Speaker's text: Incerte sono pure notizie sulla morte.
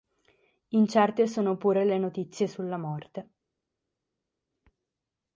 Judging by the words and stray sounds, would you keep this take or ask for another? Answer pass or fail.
fail